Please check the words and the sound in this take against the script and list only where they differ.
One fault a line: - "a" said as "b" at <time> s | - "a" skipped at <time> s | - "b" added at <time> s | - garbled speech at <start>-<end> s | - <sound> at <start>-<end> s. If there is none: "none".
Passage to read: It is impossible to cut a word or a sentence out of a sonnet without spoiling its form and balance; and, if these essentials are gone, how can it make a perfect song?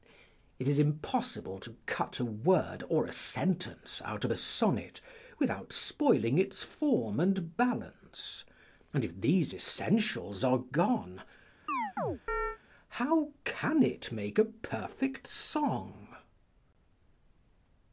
- chirp at 11.7-12.6 s